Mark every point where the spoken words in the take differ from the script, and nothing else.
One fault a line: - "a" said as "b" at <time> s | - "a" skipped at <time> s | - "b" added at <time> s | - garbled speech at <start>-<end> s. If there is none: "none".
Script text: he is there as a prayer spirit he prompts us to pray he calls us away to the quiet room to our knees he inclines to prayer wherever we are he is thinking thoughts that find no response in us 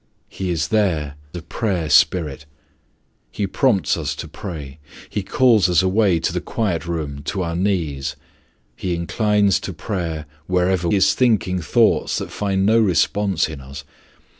- "as" skipped at 1.1 s
- "we are he" skipped at 10.9 s